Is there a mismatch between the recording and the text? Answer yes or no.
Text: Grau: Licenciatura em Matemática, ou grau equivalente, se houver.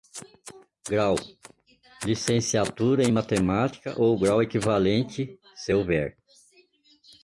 no